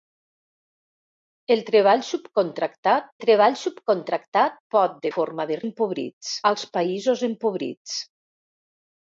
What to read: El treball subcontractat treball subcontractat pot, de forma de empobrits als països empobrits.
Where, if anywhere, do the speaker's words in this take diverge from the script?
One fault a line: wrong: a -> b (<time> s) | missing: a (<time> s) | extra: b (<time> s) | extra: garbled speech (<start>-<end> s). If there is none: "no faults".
no faults